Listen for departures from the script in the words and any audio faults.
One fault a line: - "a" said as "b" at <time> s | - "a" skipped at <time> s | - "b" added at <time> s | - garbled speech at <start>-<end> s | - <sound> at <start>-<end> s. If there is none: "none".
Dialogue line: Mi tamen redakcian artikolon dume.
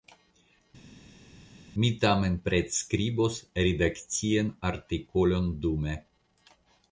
- "pretskribos" added at 2.5 s